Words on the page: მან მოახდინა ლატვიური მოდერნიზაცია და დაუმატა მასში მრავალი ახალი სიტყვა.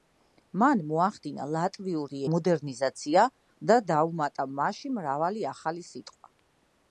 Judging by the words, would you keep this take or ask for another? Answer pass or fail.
pass